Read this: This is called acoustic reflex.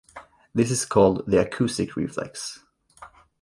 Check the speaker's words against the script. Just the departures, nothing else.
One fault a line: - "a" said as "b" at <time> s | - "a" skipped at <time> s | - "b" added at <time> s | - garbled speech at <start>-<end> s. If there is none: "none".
- "the" added at 1.3 s